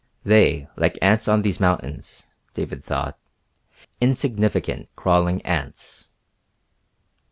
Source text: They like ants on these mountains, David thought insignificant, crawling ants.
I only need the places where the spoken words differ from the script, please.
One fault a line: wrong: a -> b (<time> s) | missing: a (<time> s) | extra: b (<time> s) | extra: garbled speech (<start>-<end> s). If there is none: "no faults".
no faults